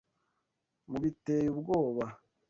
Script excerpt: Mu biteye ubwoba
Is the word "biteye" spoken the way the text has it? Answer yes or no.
yes